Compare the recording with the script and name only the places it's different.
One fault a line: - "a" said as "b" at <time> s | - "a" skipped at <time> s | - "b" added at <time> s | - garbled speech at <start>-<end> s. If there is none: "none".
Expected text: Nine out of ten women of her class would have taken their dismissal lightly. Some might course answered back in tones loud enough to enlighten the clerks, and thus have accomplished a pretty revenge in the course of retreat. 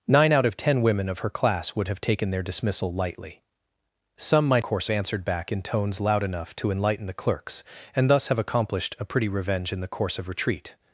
none